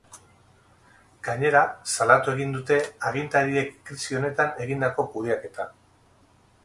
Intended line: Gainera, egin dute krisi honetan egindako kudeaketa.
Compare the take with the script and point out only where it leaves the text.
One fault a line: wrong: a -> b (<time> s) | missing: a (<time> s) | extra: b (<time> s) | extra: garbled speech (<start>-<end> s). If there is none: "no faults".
extra: salatu (2.0 s)
extra: agintariek (3.1 s)